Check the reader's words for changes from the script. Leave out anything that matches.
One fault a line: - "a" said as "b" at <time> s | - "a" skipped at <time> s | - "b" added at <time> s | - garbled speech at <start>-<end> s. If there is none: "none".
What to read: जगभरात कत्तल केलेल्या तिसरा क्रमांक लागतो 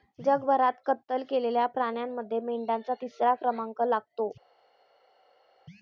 - "प्राण्यांमध्ये मेंढ्यांचा" added at 1.7 s